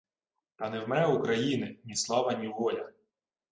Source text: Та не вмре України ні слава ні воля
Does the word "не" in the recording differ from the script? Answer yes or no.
no